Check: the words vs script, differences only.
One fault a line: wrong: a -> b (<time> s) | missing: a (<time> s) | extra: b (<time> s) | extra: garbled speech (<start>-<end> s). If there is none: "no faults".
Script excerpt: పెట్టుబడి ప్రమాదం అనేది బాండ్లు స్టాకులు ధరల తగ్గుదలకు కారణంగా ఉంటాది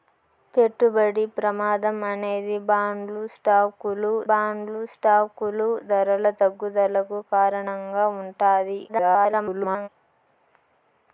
extra: బాండ్లు స్టాకులు (4.3 s)
extra: garbled speech (8.9-9.9 s)